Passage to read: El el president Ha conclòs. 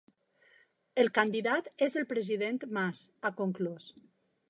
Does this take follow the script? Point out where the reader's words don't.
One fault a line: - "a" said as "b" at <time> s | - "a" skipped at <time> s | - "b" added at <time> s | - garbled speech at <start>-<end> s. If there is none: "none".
- "candidat és" added at 1.2 s
- "Mas" added at 2.8 s